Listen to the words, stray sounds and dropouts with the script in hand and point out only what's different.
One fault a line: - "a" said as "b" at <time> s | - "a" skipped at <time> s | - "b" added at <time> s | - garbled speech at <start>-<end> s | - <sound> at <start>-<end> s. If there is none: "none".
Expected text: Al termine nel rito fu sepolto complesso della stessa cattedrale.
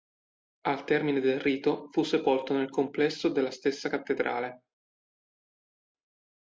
- "nel" said as "del" at 1.2 s
- "nel" added at 2.6 s